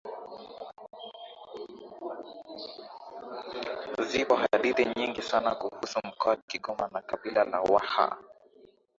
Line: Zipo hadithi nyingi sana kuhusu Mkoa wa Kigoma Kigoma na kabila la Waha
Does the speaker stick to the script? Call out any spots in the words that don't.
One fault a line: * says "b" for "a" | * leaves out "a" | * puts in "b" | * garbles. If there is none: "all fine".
* leaves out "Kigoma"